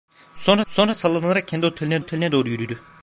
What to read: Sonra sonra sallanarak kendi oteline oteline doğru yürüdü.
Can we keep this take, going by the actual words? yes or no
yes